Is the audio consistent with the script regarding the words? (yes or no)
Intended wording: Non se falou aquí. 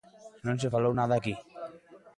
no